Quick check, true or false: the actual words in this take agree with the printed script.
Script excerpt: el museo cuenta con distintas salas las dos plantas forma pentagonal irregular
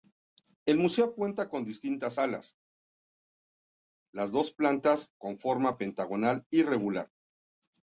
false